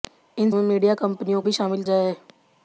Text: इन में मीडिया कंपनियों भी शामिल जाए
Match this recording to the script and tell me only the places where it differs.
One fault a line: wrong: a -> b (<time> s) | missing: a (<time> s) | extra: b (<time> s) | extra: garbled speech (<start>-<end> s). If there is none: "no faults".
no faults